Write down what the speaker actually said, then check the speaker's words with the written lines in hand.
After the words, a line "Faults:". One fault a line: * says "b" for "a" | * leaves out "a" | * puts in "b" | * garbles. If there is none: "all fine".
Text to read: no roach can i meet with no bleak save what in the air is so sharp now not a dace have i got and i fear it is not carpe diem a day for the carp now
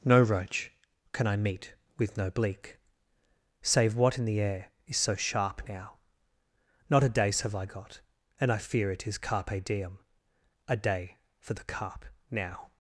no roach can i meet with no bleak save what in the air is so sharp now not a dace have i got and i fear it is carpe diem a day for the carp now
Faults:
* leaves out "not"